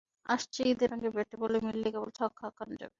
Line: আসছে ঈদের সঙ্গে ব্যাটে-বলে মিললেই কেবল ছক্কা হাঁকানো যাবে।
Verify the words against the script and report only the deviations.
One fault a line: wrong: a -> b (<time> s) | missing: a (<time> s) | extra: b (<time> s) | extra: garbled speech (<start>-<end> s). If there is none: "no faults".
no faults